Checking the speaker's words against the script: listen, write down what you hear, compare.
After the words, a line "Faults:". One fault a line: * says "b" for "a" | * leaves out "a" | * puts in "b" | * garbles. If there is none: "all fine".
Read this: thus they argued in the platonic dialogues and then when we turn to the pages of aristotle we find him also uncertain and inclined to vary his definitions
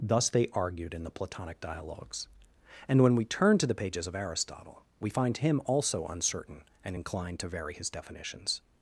thus they argued in the platonic dialogues and when we turn to the pages of aristotle we find him also uncertain and inclined to vary his definitions
Faults:
* leaves out "then"